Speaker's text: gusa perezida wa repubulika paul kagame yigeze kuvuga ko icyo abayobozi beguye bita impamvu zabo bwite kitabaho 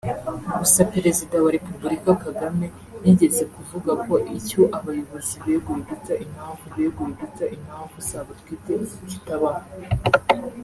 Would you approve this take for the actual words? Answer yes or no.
no